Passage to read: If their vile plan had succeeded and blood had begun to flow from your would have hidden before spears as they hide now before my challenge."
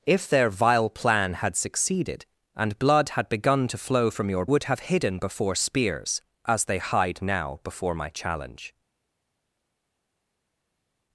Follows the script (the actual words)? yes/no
yes